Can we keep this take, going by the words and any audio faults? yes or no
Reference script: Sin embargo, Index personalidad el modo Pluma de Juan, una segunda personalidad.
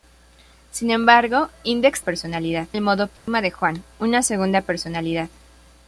no